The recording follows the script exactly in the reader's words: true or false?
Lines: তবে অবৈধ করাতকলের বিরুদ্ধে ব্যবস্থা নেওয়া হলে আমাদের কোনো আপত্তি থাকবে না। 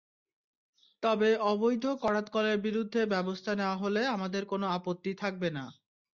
true